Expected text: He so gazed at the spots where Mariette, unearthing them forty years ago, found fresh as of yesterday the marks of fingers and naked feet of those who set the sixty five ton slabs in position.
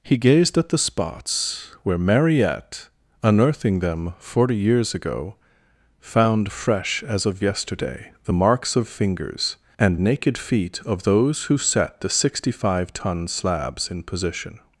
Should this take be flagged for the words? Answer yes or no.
yes